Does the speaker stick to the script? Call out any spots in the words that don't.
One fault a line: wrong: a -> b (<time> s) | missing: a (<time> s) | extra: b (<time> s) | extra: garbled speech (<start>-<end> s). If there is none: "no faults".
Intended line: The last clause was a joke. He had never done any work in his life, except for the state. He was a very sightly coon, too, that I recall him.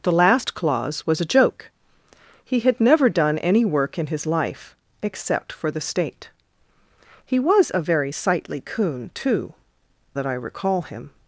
no faults